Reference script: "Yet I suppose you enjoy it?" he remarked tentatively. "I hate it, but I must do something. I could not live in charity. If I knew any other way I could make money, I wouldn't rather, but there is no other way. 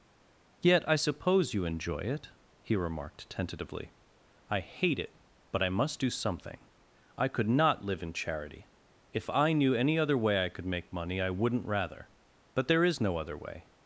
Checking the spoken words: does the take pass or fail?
pass